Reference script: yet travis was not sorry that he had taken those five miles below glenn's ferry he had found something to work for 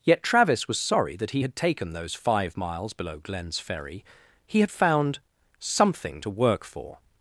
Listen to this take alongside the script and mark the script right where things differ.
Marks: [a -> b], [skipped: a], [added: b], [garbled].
yet travis was [skipped: not] sorry that he had taken those five miles below glenn's ferry he had found something to work for